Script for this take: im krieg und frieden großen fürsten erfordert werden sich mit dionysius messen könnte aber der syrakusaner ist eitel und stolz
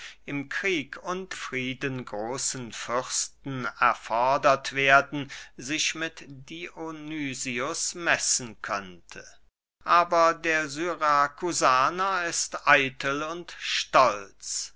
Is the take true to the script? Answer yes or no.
yes